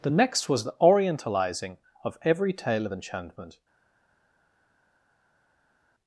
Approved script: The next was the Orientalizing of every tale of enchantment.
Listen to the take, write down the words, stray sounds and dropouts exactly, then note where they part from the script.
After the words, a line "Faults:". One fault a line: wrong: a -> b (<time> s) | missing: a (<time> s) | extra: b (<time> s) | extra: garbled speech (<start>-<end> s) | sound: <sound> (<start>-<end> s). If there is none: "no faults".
The next was the Orientalizing of every tale of enchantment.
Faults:
no faults